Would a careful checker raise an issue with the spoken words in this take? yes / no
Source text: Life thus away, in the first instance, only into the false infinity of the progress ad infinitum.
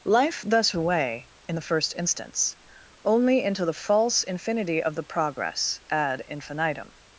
no